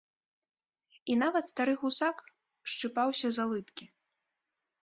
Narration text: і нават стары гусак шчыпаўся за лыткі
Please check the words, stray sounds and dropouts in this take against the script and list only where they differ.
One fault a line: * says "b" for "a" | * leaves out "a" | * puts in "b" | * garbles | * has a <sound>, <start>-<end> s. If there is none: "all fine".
all fine